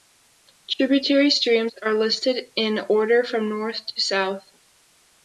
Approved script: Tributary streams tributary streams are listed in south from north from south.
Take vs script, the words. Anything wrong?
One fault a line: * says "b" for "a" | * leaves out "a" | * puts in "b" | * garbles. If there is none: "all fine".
* leaves out "tributary streams"
* says "order" for "south"
* says "to" for "from"